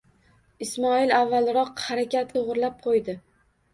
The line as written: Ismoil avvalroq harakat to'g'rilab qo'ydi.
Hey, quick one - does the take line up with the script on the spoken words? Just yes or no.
yes